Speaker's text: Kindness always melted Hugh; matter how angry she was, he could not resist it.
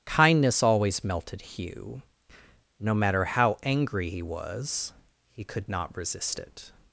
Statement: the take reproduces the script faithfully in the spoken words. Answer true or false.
false